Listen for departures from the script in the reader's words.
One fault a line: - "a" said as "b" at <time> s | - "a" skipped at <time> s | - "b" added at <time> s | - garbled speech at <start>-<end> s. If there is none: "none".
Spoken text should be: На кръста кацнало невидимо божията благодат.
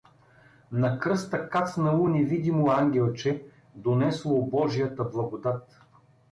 - "ангелче донесло" added at 2.7 s